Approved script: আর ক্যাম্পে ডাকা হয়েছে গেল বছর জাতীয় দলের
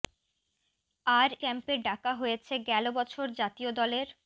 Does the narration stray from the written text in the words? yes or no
no